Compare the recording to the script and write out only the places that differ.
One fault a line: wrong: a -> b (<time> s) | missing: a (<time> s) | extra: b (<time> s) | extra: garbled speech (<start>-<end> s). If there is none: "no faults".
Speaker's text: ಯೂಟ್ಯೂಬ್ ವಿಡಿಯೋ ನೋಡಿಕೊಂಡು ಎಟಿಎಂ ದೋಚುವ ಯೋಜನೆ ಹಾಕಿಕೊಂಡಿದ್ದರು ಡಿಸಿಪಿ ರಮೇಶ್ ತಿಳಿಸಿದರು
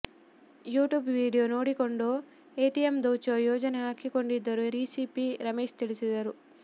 no faults